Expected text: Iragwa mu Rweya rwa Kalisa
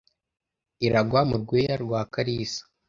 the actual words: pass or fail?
pass